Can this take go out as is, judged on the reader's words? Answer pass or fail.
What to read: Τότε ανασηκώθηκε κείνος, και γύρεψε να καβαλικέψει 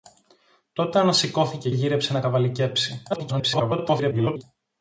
fail